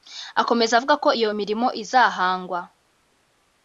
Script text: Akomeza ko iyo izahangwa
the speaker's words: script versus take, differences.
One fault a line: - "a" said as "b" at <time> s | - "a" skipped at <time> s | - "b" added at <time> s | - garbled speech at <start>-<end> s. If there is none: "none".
- "avuga" added at 0.8 s
- "mirimo" added at 1.4 s